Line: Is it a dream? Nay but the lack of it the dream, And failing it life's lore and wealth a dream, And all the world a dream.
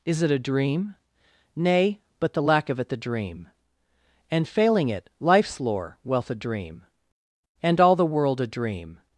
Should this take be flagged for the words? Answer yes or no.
yes